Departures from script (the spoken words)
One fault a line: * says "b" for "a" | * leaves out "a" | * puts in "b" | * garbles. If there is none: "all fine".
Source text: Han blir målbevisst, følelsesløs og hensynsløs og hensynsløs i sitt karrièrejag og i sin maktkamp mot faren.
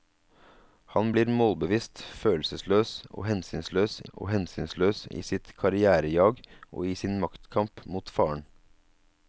all fine